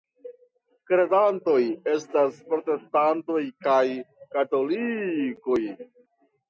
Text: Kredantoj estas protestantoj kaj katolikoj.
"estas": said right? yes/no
yes